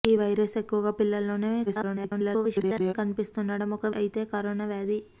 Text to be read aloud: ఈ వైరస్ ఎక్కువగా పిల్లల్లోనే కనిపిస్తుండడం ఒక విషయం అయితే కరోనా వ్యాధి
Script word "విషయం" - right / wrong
wrong